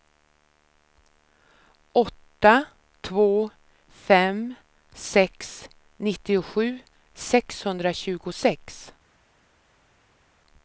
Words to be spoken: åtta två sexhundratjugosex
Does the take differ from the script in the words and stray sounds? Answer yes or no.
yes